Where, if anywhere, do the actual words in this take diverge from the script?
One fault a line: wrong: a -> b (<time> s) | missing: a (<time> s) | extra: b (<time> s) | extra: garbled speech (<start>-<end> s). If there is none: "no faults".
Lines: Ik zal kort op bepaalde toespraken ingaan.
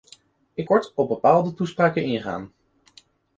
missing: zal (0.7 s)